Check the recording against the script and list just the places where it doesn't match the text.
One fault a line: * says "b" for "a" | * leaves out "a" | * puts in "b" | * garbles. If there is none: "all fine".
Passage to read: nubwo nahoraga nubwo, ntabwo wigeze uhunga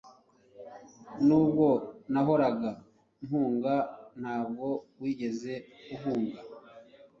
* says "mpunga" for "nubwo"